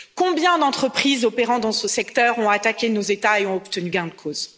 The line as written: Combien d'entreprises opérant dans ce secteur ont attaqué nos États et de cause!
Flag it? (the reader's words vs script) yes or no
yes